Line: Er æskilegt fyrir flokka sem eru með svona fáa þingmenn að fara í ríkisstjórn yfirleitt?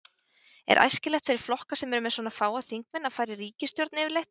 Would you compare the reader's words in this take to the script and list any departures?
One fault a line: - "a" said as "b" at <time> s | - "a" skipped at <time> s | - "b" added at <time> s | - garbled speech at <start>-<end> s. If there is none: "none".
none